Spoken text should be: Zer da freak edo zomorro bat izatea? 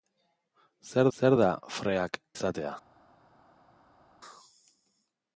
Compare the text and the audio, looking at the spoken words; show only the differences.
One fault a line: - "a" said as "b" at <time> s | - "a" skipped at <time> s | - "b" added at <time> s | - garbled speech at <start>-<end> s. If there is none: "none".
- "zer" added at 1.2 s
- "edo zomorro bat" skipped at 2.2 s